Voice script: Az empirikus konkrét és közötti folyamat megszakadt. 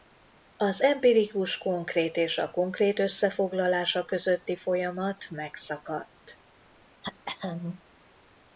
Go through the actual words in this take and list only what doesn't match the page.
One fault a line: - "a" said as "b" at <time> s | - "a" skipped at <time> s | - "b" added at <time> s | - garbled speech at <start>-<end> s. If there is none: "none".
- "a konkrét összefoglalása" added at 2.4 s